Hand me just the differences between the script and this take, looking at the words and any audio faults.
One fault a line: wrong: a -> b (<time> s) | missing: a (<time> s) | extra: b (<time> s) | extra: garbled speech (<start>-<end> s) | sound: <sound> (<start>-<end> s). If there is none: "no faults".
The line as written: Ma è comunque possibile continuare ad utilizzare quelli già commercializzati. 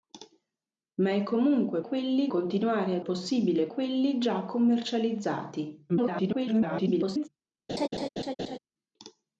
wrong: possibile -> quelli (1.8 s)
wrong: utilizzare -> possibile (3.0 s)
extra: garbled speech (5.9-7.3 s)
sound: laugh (7.7-8.6 s)